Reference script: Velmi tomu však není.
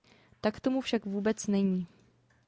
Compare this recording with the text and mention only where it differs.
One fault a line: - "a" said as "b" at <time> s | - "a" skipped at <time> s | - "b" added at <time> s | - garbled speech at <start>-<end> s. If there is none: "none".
- "Velmi" said as "Tak" at 0.4 s
- "vůbec" added at 1.1 s